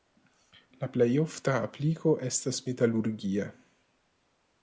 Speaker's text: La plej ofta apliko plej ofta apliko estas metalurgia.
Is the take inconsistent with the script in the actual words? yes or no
yes